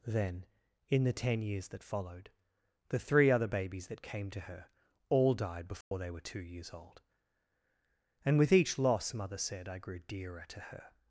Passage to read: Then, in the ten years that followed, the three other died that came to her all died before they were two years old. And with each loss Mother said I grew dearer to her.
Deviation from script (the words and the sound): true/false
true